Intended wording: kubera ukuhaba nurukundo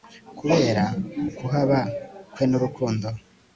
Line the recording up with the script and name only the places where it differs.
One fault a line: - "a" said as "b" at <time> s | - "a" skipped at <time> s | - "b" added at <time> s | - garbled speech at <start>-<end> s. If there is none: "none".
- "kwe" added at 2.3 s